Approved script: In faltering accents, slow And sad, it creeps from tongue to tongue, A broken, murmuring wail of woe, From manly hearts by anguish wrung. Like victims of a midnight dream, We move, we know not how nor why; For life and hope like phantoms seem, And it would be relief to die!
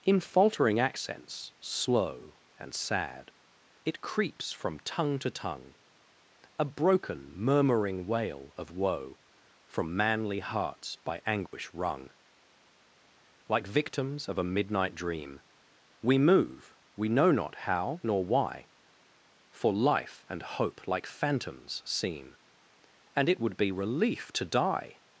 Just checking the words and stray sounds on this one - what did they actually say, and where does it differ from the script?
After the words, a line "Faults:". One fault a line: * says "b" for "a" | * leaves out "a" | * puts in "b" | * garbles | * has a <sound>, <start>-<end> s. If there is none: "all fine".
In faltering accents, slow And sad, it creeps from tongue to tongue, A broken, murmuring wail of woe, From manly hearts by anguish wrung. Like victims of a midnight dream, We move, we know not how nor why; For life and hope like phantoms seem, And it would be relief to die!
Faults:
* has a dropout, 11.5-11.5 s